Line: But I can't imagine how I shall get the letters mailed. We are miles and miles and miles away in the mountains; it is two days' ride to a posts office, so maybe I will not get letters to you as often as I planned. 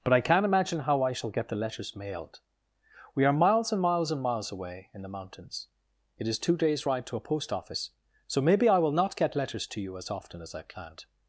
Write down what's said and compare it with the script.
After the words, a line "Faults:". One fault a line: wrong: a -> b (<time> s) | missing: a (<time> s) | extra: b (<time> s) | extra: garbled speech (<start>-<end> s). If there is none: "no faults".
But I can't imagine how I shall get the letters mailed. We are miles and miles and miles away in the mountains; it is two days' ride to a post office, so maybe I will not get letters to you as often as I planned.
Faults:
wrong: posts -> post (7.2 s)